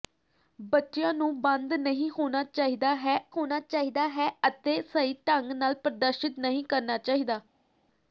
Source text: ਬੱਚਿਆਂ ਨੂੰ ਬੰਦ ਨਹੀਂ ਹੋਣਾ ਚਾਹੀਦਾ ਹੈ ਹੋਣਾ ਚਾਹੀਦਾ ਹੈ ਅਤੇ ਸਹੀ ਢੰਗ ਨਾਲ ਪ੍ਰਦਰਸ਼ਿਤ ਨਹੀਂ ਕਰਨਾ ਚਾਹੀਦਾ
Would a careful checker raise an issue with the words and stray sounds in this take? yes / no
no